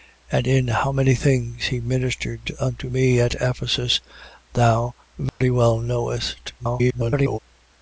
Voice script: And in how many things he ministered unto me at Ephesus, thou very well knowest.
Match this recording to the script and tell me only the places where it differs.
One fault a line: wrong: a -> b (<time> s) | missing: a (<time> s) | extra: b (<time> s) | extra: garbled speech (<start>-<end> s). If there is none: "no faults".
extra: garbled speech (6.6-7.4 s)